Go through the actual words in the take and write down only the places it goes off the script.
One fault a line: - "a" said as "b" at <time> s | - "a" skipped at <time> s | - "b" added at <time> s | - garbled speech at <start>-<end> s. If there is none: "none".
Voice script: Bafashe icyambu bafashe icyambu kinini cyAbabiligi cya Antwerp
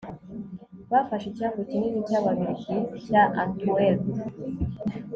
- "bafashe icyambu" skipped at 1.6 s